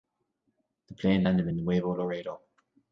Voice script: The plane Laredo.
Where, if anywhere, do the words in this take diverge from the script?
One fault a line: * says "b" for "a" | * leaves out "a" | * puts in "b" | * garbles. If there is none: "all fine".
* puts in "landed in Nuevo"